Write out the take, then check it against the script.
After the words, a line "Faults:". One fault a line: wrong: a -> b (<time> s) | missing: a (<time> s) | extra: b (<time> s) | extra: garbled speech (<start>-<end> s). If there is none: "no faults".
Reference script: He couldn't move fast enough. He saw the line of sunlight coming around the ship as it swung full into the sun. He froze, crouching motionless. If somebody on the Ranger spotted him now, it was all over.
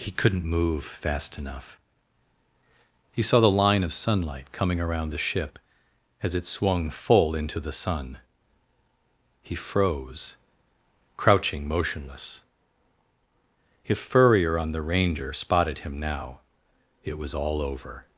He couldn't move fast enough. He saw the line of sunlight coming around the ship as it swung full into the sun. He froze, crouching motionless. If furrier on the Ranger spotted him now, it was all over.
Faults:
wrong: somebody -> furrier (14.0 s)